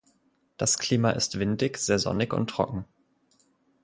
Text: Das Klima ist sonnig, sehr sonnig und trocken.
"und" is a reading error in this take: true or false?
false